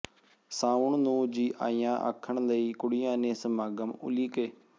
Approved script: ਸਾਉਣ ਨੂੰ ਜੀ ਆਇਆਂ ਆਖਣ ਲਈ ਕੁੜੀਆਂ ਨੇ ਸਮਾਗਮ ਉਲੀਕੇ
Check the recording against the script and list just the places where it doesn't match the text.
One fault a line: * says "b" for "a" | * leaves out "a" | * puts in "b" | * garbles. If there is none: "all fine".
all fine